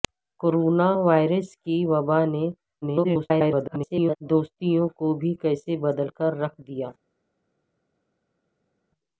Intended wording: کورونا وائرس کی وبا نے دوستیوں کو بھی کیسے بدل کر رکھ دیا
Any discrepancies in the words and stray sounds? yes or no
yes